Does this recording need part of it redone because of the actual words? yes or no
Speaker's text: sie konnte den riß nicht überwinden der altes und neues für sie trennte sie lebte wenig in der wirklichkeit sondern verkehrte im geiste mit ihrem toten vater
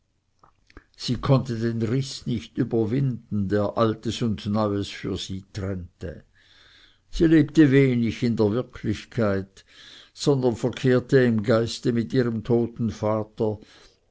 no